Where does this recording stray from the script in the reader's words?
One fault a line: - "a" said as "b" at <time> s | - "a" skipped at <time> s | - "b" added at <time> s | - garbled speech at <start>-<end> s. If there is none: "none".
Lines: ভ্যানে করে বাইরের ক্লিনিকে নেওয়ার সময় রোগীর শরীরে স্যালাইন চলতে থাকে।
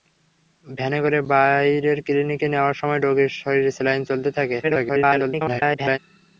- garbled speech at 4.6-6.0 s